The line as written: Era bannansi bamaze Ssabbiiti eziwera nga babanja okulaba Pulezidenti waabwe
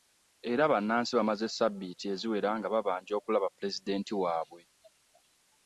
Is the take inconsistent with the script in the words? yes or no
no